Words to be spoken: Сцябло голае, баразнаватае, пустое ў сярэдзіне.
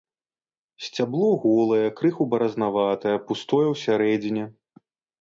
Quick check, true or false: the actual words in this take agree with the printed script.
false